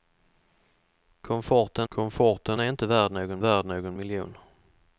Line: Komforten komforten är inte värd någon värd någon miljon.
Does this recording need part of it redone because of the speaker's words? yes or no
no